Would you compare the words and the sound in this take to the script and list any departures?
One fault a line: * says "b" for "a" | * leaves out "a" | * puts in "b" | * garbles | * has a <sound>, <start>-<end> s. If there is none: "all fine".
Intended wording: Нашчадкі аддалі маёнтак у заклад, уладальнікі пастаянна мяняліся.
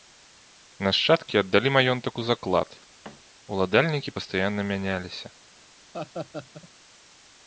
* has a thud, 3.0-3.2 s
* has a laugh, 5.9-6.7 s